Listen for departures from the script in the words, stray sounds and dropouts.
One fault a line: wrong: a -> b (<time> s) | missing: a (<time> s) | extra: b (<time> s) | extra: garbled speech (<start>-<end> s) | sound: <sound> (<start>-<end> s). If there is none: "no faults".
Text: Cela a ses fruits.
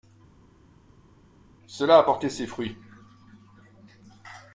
extra: porté (2.0 s)